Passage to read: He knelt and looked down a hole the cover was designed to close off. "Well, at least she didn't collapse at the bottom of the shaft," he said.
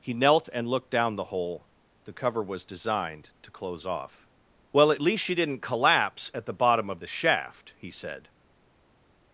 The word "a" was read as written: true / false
false